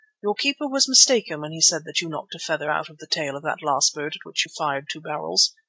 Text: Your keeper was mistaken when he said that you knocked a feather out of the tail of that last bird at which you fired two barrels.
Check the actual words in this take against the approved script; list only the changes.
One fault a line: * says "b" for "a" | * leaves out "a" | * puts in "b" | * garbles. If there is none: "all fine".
all fine